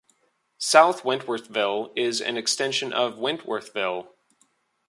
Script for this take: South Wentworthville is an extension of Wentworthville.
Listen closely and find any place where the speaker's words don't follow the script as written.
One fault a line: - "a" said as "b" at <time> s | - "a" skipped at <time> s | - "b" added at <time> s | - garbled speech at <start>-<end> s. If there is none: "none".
none